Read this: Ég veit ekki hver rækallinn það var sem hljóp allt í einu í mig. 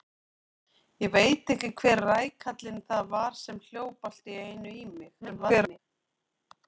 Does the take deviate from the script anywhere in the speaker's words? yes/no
yes